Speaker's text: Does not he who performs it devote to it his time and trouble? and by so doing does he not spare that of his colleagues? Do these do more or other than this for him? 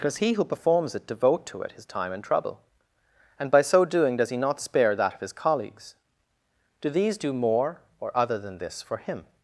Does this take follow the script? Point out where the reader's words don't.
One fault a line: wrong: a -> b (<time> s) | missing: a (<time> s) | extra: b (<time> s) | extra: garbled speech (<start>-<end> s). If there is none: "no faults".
missing: not (0.2 s)